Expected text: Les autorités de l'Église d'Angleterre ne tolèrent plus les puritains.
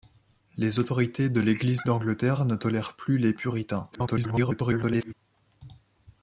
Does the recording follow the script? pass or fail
fail